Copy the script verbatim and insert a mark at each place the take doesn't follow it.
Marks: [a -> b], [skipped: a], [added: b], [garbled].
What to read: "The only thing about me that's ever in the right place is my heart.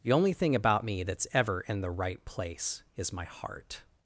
"The only thing about me that's ever in the right place is my heart.